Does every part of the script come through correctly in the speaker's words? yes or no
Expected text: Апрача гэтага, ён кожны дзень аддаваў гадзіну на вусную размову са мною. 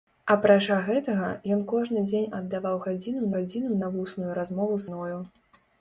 no